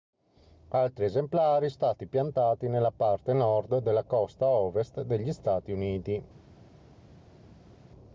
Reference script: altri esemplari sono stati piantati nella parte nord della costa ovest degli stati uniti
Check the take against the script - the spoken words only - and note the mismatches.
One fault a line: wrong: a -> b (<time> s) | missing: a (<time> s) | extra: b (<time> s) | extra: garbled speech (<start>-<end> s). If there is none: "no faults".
missing: sono (1.7 s)